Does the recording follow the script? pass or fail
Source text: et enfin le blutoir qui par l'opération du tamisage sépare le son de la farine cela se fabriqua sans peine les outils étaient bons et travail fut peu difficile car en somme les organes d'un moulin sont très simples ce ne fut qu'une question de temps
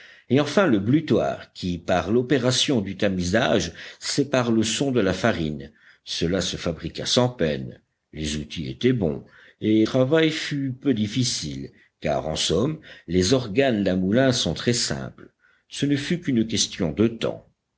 pass